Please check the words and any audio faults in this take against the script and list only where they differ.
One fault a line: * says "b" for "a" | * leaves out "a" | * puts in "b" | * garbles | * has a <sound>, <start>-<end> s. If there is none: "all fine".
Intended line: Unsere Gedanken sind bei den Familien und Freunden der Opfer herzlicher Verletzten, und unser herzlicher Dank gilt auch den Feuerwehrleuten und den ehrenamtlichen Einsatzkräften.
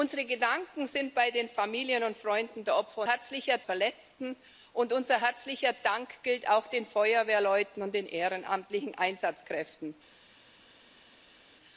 all fine